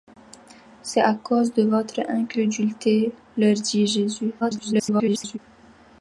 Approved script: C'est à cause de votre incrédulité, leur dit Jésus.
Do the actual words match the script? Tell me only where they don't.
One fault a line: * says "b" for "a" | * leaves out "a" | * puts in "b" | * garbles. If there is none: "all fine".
* garbles